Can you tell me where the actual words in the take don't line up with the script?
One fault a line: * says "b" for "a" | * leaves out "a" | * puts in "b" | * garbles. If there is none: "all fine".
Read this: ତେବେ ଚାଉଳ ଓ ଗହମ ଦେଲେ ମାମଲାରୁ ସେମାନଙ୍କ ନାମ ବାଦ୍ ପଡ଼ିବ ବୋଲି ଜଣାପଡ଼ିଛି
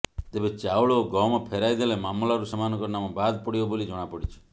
* puts in "ଫେରାଇ"